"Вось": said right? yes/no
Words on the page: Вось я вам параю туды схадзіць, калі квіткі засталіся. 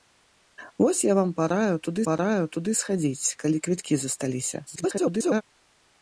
yes